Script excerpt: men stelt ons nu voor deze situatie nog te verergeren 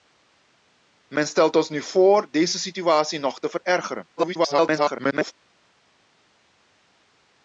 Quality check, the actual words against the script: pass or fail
fail